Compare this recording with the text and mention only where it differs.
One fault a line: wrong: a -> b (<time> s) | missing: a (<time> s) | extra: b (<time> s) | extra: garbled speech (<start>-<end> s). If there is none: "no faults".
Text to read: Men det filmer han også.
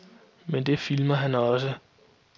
no faults